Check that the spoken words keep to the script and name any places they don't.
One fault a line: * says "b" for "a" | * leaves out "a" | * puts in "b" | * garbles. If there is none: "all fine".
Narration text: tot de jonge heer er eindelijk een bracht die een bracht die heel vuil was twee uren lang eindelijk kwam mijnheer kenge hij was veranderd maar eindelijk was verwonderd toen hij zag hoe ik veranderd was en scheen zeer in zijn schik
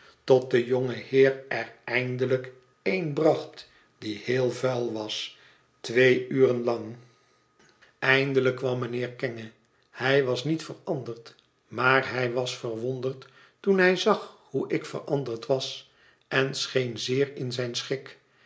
* leaves out "een bracht die"
* puts in "niet"
* says "hij" for "eindelijk"